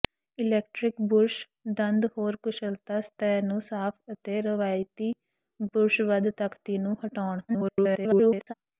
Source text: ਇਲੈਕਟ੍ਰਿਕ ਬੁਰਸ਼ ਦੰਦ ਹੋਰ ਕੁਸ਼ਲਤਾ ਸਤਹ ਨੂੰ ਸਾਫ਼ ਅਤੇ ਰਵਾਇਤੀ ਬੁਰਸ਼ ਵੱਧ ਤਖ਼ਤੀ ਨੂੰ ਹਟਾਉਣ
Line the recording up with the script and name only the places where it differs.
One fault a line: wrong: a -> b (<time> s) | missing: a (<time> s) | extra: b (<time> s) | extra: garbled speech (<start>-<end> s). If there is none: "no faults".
extra: garbled speech (7.5-8.5 s)